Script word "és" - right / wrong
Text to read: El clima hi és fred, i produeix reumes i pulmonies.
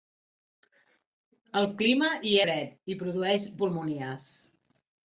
wrong